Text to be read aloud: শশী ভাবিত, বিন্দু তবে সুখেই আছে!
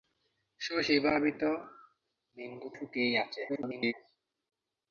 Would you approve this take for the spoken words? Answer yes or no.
no